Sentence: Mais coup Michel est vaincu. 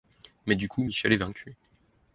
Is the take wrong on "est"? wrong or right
right